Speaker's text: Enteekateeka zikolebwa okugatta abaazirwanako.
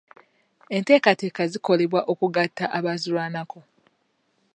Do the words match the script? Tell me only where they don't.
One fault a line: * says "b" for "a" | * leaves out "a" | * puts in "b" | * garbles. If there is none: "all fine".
all fine